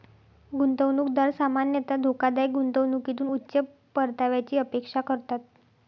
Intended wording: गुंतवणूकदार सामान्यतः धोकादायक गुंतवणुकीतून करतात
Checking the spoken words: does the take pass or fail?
fail